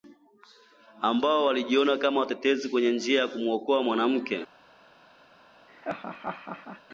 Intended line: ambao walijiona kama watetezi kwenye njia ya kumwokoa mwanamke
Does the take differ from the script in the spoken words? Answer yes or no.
no